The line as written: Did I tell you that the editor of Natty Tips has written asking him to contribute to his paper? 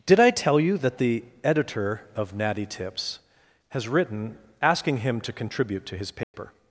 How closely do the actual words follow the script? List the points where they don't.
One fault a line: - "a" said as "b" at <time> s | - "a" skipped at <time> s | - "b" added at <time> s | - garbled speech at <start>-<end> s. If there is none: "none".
none